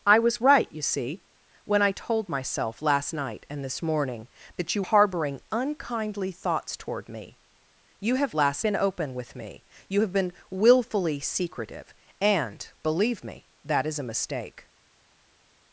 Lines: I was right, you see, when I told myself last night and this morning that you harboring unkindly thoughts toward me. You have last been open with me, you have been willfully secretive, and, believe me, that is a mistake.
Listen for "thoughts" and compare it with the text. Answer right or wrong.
right